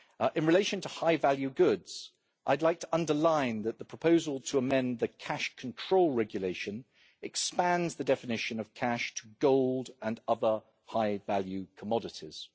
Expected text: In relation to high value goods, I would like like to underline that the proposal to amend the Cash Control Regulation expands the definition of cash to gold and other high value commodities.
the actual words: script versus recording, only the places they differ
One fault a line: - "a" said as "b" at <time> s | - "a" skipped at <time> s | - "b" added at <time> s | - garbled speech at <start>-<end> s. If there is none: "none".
- "like" skipped at 2.8 s